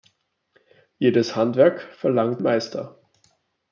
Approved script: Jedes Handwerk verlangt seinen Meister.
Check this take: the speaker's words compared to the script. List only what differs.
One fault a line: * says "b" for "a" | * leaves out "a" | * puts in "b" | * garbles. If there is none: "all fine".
* leaves out "seinen"